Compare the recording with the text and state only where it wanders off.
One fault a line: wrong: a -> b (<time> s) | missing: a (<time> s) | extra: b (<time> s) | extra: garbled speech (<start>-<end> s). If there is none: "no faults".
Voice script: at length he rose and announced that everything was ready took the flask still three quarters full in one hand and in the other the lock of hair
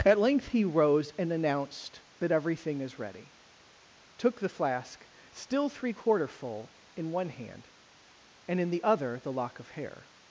wrong: was -> is (2.8 s)
wrong: quarters -> quarter (5.9 s)